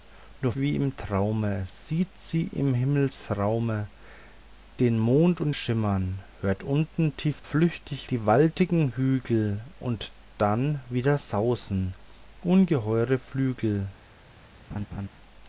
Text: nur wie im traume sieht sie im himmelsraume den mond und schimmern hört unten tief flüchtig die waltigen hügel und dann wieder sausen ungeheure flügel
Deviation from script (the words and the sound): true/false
true